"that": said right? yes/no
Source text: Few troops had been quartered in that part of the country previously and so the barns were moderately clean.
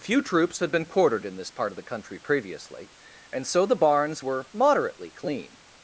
no